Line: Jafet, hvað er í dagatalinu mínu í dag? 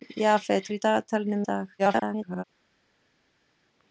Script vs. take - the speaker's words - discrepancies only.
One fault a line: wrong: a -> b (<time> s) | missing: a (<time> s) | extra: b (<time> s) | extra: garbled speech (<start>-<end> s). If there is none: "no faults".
missing: hvað (0.7 s)
missing: mínu (1.4 s)
extra: garbled speech (1.8-2.4 s)